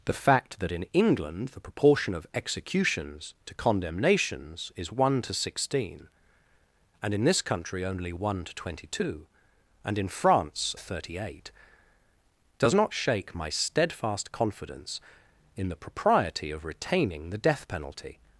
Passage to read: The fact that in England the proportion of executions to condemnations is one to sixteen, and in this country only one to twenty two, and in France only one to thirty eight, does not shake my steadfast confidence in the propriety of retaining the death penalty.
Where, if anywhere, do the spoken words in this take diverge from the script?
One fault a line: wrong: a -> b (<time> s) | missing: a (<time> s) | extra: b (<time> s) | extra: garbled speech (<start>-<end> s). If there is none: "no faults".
missing: only one to (10.8 s)